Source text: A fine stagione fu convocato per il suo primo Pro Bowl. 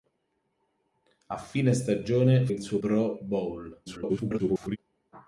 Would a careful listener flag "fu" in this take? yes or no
yes